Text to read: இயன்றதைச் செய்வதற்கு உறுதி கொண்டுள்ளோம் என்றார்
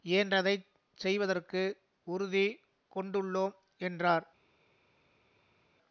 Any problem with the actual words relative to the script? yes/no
no